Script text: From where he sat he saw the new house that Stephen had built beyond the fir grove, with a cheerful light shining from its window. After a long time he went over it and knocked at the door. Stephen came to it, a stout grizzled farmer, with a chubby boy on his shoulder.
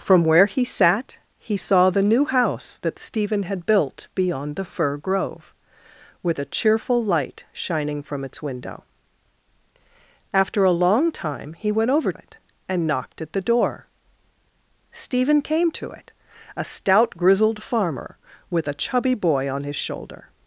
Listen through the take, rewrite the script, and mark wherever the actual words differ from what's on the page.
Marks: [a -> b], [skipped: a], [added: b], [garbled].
From where he sat he saw the new house that Stephen had built beyond the fir grove, with a cheerful light shining from its window. After a long time he went over it and knocked at the door. Stephen came to it, a stout grizzled farmer, with a chubby boy on his shoulder.